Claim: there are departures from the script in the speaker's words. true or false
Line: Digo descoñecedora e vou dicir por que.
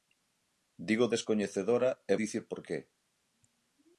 true